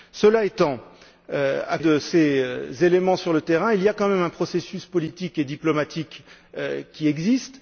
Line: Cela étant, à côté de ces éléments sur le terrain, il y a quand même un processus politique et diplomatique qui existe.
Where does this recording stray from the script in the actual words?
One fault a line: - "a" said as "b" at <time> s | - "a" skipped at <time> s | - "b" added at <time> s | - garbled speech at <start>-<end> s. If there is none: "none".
- "côté" skipped at 1.8 s